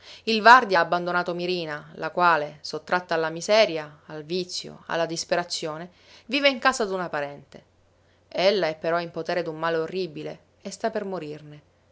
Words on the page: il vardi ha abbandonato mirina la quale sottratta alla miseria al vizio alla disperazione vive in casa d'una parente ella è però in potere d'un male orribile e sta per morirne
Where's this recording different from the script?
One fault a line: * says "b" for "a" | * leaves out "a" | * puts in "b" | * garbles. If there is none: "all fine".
all fine